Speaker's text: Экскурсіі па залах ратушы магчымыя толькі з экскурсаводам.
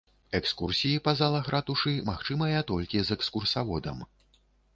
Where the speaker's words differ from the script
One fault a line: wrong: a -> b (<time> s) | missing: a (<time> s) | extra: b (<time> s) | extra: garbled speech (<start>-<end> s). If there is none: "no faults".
no faults